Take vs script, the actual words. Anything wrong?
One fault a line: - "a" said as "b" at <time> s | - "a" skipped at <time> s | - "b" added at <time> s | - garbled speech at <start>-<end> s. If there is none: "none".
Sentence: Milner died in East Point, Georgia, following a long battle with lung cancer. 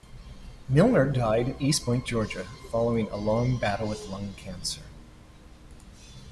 none